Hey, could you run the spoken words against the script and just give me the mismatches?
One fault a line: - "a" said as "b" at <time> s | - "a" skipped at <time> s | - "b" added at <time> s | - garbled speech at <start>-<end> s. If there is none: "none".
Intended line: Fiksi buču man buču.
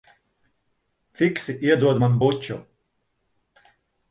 - "buču" said as "iedod" at 1.7 s